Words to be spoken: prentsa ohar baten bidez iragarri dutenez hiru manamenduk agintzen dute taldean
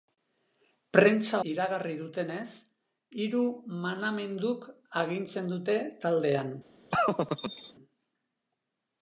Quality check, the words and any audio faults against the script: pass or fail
fail